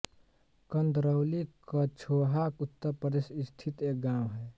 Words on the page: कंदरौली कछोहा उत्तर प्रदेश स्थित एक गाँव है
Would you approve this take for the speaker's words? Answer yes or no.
yes